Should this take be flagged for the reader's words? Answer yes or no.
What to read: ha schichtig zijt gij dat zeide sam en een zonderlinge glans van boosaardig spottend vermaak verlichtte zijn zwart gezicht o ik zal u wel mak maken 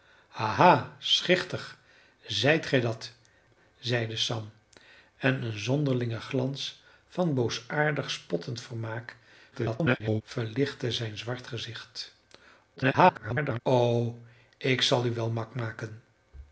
yes